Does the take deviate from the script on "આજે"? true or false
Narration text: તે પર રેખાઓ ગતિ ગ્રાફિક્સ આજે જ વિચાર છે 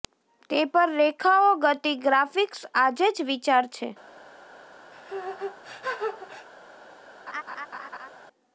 false